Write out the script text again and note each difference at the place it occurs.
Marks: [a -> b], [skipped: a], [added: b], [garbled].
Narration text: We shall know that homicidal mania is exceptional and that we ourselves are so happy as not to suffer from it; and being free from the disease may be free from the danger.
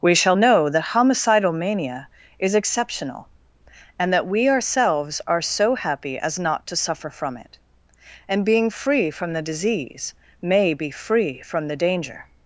We shall know that homicidal mania is exceptional and that we ourselves are so happy as not to suffer from it; and being free from the disease may be free from the danger.